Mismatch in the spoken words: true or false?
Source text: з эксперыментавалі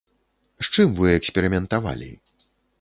true